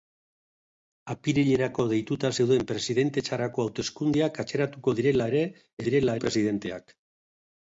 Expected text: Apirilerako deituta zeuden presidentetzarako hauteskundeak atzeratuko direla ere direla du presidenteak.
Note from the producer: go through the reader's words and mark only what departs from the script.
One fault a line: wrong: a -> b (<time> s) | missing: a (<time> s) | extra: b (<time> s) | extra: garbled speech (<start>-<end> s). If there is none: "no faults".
no faults